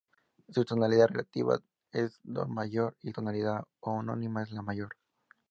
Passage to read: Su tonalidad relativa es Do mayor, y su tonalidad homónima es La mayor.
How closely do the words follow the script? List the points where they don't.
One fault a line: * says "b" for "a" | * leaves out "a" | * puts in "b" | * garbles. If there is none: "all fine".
* leaves out "su"